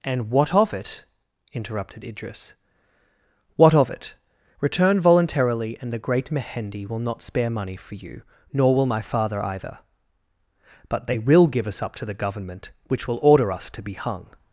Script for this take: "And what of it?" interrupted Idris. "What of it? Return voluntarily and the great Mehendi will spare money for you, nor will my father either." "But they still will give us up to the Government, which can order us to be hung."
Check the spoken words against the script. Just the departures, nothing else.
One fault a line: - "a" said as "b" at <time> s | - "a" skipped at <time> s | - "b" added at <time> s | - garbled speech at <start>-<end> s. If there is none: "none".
- "not" added at 7.0 s
- "still" skipped at 11.2 s
- "can" said as "will" at 13.1 s